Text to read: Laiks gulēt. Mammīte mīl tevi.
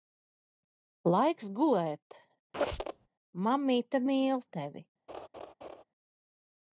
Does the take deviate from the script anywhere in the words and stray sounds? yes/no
yes